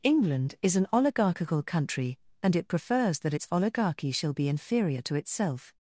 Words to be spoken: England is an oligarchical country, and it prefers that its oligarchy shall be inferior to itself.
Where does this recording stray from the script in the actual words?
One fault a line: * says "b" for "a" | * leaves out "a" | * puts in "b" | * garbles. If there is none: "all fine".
all fine